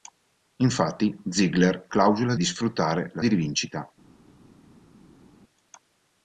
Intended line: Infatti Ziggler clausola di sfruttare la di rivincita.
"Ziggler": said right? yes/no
yes